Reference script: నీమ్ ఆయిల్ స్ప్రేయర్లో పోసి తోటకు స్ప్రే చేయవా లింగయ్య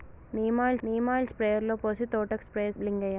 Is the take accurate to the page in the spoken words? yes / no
no